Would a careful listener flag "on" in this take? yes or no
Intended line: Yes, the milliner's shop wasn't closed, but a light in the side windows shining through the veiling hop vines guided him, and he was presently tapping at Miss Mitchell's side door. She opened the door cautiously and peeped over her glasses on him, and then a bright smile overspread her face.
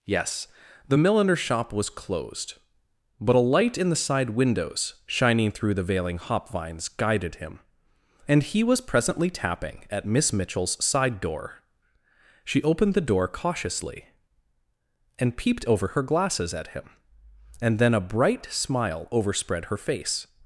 yes